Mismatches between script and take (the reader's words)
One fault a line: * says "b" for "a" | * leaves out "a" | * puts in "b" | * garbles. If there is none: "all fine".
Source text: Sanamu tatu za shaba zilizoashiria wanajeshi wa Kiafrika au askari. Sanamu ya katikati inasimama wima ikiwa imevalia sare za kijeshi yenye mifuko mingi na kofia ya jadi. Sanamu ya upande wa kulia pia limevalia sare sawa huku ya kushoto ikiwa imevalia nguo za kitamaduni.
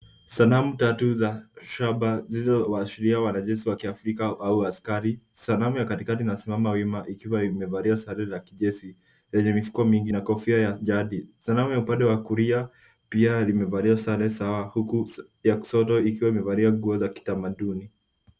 all fine